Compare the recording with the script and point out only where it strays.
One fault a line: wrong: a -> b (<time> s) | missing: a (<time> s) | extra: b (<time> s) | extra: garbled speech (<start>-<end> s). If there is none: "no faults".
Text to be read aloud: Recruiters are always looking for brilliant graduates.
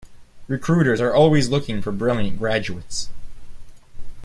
no faults